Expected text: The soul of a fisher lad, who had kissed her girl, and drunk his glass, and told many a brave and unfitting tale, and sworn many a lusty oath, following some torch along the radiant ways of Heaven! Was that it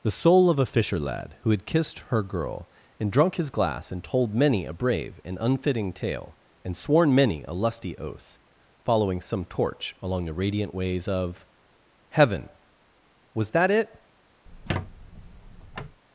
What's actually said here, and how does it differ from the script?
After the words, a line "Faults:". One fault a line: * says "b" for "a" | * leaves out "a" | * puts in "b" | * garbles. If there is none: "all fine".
The soul of a fisher lad, who had kissed her girl, and drunk his glass, and told many a brave and unfitting tale, and sworn many a lusty oath, following some torch along the radiant ways of Heaven! Was that it
Faults:
all fine